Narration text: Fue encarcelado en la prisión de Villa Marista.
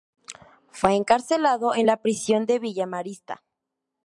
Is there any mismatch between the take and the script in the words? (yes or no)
no